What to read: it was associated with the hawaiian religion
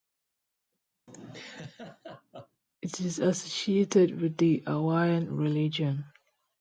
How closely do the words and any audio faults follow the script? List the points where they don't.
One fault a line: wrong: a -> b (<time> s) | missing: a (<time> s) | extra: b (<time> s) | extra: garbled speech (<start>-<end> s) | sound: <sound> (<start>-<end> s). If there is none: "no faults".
sound: laugh (1.1-2.6 s)
wrong: was -> is (3.0 s)